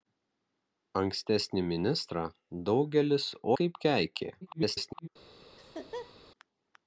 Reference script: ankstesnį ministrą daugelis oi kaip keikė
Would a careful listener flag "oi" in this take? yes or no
yes